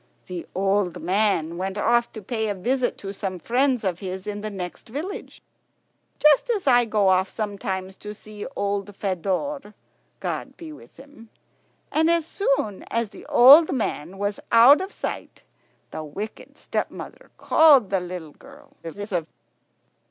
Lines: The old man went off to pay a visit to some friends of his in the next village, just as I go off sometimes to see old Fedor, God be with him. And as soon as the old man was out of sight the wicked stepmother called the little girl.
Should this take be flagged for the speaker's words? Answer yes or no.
yes